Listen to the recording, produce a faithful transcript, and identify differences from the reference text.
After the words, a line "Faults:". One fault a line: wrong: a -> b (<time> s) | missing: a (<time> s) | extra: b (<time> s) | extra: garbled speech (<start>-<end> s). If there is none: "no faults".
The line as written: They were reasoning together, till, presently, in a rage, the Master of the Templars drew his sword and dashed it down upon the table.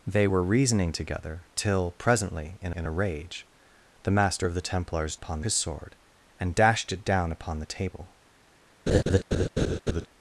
They were reasoning together, till, presently, in in a rage, the Master of the Templars upon his sword and dashed it down upon the table.
Faults:
extra: in (2.7 s)
wrong: drew -> upon (5.1 s)